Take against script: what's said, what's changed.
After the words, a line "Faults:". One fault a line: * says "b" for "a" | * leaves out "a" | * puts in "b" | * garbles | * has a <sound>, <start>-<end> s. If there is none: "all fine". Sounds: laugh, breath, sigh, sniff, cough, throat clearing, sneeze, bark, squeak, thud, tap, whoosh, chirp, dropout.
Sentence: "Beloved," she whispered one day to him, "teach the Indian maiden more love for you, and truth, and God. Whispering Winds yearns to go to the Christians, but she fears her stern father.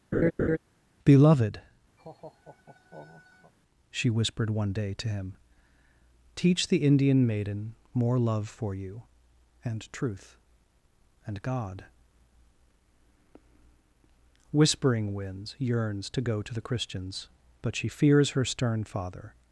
"Beloved," she whispered one day to him, "teach the Indian maiden more love for you, and truth, and God. Whispering Winds yearns to go to the Christians, but she fears her stern father.
Faults:
* has a laugh, 0.1-0.6 s
* has a laugh, 2.0-3.5 s